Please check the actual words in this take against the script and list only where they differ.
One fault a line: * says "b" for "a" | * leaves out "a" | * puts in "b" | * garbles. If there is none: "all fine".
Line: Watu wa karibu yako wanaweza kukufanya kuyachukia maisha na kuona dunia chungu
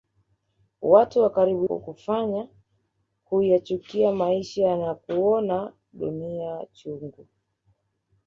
* leaves out "yako wanaweza"